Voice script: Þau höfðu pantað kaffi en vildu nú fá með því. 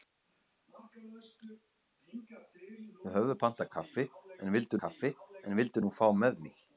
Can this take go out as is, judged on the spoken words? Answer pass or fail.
fail